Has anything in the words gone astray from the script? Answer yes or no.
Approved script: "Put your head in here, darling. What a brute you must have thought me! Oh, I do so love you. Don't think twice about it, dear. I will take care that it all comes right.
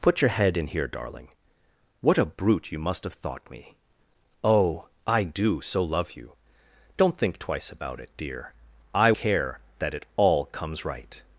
yes